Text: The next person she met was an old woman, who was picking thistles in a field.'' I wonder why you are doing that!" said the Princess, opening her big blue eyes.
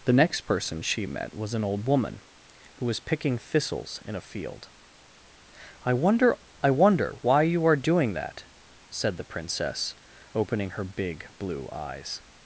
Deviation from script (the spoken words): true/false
true